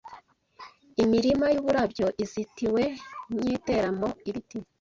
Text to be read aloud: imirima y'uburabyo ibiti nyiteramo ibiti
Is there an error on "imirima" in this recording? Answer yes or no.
no